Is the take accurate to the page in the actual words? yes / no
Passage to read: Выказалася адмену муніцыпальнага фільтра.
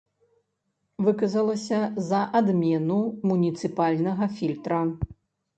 no